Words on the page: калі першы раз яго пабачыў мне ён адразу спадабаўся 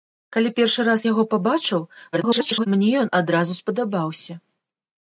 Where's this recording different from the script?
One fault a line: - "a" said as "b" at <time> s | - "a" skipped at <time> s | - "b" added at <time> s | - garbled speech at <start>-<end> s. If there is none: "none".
- garbled speech at 2.1-2.7 s